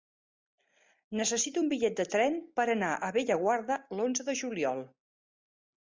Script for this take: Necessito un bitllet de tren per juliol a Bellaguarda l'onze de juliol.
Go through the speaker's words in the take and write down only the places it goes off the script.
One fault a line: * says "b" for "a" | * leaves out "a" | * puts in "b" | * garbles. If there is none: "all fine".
* says "anar" for "juliol"